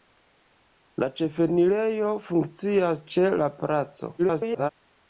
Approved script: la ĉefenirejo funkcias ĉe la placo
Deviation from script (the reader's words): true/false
true